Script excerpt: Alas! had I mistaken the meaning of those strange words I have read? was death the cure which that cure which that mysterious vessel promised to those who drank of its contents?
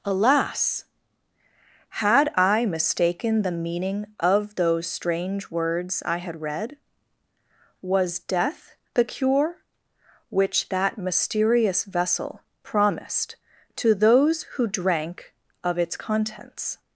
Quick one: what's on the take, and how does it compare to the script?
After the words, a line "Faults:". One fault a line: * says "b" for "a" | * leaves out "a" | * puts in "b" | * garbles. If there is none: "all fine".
Alas! had I mistaken the meaning of those strange words I had read? was death the cure which that mysterious vessel promised to those who drank of its contents?
Faults:
* says "had" for "have"
* leaves out "cure which that"